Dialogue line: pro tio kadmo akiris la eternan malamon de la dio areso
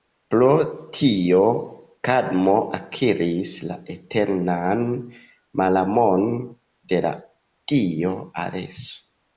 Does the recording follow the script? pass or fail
pass